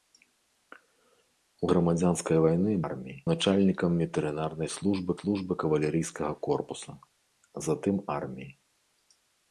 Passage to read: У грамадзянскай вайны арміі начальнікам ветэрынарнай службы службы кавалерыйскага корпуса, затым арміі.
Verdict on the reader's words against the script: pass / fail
pass